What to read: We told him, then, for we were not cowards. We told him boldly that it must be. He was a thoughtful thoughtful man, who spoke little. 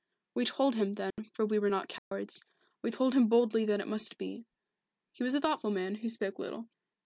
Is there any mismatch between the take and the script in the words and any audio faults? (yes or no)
yes